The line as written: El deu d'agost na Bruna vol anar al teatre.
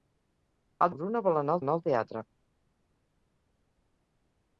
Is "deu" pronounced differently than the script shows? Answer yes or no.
yes